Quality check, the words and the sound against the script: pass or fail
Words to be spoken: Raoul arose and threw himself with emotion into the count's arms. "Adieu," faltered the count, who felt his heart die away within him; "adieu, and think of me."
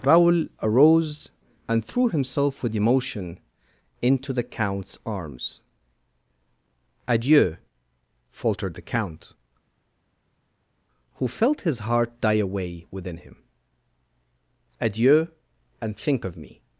pass